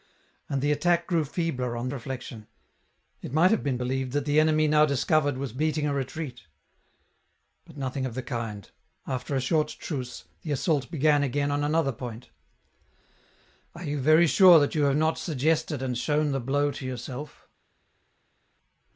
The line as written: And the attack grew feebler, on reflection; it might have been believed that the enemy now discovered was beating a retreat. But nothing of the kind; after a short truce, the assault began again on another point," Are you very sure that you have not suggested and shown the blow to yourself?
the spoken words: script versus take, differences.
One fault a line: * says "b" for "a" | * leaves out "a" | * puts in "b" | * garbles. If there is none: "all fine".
all fine